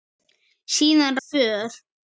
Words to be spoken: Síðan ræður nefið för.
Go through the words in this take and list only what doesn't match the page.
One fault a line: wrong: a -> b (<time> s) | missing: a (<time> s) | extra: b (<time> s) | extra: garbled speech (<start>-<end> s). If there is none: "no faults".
missing: ræður nefið (1.2 s)